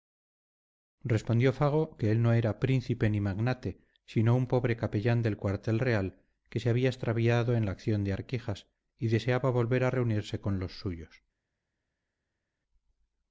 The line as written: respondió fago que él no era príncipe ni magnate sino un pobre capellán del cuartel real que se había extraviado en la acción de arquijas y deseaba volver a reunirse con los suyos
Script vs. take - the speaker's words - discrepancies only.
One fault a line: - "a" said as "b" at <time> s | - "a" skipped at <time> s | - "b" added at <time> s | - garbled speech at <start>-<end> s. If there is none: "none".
none